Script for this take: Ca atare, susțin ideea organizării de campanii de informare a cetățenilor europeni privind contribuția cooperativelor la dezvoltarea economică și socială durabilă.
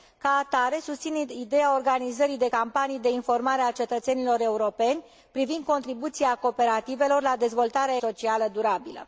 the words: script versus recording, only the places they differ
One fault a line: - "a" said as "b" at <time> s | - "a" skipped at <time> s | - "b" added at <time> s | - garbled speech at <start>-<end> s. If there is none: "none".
- "economică și" skipped at 8.0 s